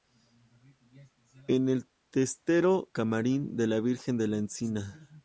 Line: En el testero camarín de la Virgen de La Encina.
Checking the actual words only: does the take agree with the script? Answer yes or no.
yes